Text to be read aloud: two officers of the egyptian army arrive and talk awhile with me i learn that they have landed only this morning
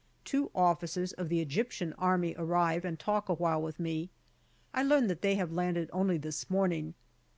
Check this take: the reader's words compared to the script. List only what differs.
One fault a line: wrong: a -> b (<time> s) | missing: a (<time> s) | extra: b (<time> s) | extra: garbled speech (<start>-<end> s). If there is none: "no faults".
no faults